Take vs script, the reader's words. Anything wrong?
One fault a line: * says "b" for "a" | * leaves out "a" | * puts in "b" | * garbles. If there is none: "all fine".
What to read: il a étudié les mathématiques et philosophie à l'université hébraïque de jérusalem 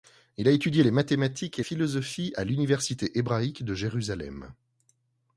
all fine